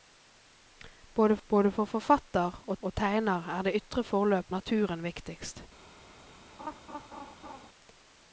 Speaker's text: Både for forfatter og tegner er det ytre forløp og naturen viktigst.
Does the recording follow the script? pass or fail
fail